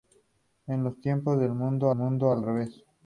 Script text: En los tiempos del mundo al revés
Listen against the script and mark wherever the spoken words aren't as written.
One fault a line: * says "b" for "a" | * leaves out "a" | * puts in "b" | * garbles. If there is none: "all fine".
* puts in "mundo"